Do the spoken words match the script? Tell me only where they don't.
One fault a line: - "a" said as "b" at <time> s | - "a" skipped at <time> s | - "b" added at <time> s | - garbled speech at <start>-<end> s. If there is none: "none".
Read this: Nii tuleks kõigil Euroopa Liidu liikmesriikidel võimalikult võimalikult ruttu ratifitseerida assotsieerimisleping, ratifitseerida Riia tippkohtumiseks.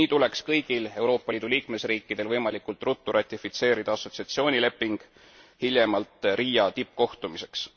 - "võimalikult" skipped at 2.8 s
- "ratifitseerida" said as "hiljemalt" at 5.6 s